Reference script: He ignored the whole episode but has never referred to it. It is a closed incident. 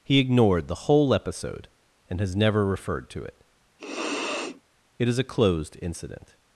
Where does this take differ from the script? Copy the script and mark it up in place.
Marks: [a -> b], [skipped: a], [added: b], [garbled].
He ignored the whole episode [but -> and] has never referred to it. It is a closed incident.